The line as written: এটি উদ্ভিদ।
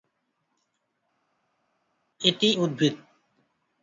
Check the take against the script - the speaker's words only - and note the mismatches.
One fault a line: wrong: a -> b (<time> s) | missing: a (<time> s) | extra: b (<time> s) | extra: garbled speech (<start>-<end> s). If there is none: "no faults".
no faults